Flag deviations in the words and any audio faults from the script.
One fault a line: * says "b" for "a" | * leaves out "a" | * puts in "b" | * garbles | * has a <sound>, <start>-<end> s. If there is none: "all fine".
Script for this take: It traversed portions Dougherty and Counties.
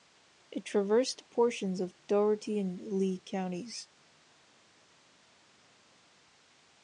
* puts in "of"
* puts in "Lee"